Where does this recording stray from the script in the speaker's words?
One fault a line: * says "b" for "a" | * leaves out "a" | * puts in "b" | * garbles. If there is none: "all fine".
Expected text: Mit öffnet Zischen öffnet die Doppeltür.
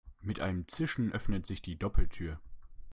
* says "einem" for "öffnet"
* puts in "sich"